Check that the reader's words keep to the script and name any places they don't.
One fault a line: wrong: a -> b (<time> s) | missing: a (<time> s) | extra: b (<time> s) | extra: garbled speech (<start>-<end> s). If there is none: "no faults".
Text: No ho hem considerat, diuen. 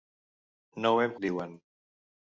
missing: considerat (1.1 s)